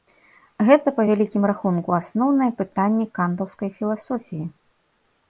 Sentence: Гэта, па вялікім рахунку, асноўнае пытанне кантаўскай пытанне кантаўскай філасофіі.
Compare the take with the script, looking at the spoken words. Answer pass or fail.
fail